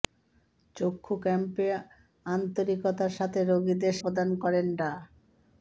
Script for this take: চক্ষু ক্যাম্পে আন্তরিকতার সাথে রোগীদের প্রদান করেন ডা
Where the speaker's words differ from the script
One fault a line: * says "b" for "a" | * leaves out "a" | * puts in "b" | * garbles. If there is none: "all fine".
all fine